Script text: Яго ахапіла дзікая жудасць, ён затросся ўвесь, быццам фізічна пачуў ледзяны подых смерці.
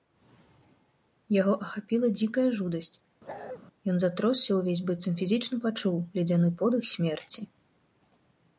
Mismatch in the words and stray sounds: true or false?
true